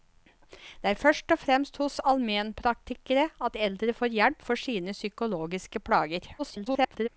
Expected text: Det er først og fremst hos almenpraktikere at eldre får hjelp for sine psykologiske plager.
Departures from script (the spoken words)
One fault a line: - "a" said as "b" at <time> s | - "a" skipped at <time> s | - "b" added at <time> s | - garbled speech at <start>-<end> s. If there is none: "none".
- garbled speech at 6.4-7.1 s